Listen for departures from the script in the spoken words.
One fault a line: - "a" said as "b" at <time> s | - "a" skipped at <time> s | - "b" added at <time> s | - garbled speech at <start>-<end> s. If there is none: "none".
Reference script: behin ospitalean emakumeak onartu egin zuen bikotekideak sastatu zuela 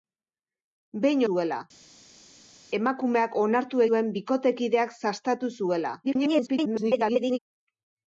- "ospitalean" said as "zuela" at 1.3 s
- "egin" skipped at 3.8 s
- garbled speech at 6.0-7.4 s